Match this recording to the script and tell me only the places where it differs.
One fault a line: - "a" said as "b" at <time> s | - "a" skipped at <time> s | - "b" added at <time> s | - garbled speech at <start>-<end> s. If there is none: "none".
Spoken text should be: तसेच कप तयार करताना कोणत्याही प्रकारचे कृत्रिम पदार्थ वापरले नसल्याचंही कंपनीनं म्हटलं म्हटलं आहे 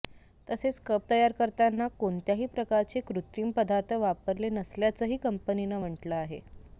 - "म्हटलं" skipped at 6.1 s